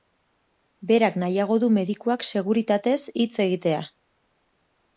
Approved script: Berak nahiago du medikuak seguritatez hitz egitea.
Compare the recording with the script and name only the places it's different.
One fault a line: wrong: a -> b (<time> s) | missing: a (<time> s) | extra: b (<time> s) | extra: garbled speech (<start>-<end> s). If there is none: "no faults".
no faults